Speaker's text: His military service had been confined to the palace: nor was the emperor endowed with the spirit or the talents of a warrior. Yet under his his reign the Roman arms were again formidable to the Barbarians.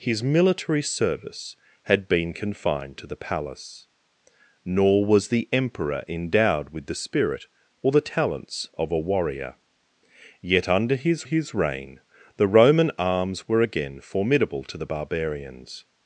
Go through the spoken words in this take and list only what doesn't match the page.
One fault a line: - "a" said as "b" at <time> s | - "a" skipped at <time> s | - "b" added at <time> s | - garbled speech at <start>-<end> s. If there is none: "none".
none